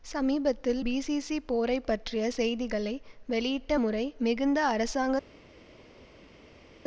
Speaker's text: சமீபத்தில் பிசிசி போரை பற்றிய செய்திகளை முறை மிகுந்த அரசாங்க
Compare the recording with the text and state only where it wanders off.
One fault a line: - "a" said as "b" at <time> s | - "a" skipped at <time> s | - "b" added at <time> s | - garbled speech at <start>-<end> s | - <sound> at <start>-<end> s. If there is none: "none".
- "வெளியிட்ட" added at 3.3 s